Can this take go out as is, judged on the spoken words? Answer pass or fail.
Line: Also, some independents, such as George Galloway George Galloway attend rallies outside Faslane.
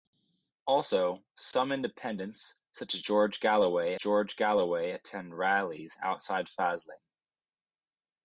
pass